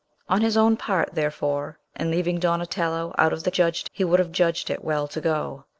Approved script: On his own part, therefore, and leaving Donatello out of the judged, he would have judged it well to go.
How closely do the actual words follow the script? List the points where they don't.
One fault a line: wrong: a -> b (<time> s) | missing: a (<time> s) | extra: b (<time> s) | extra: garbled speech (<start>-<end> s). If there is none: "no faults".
no faults